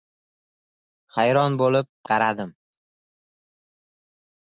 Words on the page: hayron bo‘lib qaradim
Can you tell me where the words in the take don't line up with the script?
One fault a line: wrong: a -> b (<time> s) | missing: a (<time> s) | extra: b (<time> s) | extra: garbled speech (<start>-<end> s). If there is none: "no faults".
no faults